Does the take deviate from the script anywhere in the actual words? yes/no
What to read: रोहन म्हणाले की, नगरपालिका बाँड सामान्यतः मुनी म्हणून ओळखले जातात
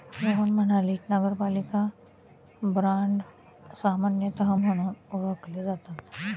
yes